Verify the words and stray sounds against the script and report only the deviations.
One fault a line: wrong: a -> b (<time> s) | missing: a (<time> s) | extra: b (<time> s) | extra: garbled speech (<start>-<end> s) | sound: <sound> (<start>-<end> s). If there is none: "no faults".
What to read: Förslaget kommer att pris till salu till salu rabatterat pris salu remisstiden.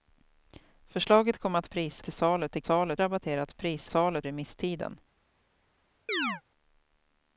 sound: chirp (6.1-6.4 s)